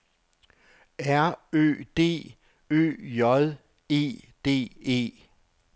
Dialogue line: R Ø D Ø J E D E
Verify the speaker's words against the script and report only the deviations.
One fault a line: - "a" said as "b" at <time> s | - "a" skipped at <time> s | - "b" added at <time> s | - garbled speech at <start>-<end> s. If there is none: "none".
none